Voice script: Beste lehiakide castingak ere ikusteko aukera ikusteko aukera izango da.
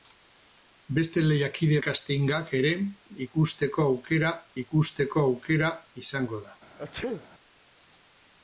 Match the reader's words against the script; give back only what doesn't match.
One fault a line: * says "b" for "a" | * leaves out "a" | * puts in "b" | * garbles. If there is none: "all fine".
all fine